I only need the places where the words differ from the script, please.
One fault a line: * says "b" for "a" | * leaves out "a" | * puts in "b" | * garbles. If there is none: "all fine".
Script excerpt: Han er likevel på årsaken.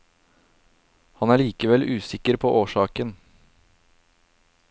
* puts in "usikker"